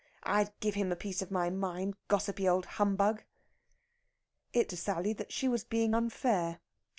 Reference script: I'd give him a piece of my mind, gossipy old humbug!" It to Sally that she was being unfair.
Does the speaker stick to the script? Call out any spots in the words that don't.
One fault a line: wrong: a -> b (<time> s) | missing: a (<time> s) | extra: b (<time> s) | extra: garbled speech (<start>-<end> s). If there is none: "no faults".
no faults